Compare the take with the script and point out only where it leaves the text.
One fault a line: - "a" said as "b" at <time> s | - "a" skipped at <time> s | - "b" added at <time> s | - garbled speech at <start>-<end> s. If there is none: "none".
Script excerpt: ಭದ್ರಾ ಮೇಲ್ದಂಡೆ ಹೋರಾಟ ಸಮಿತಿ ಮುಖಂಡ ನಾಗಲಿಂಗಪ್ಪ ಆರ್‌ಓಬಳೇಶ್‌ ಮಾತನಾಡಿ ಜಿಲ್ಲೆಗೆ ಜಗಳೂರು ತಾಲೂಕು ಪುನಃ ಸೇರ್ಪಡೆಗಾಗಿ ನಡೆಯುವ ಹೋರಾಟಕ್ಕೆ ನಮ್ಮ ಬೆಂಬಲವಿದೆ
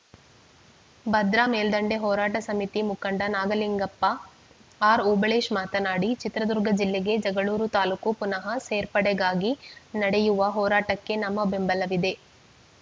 - "ಚಿತ್ರದುರ್ಗ" added at 6.2 s